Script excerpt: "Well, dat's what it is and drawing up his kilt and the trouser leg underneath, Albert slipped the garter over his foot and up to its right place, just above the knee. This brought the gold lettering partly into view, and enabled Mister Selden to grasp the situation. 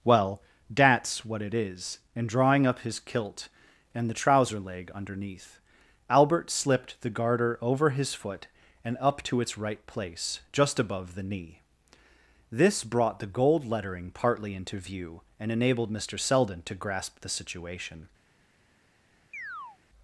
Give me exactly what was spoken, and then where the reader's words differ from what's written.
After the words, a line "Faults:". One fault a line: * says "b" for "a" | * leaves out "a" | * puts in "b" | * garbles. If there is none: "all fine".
"Well, dat's what it is and drawing up his kilt and the trouser leg underneath, Albert slipped the garter over his foot and up to its right place, just above the knee. This brought the gold lettering partly into view, and enabled Mister Selden to grasp the situation.
Faults:
all fine